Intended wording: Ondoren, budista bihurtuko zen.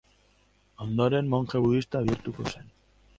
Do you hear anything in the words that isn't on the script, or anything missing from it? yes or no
yes